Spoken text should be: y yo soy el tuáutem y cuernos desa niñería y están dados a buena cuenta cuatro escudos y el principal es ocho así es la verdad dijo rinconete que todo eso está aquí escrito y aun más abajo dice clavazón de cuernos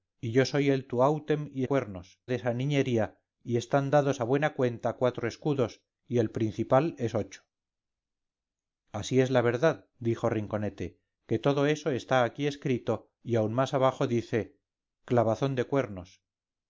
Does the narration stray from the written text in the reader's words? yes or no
no